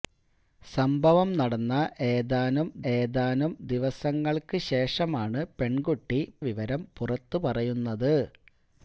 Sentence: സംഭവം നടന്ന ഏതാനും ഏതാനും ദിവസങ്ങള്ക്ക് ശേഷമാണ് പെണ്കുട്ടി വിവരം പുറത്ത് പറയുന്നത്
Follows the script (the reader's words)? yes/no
yes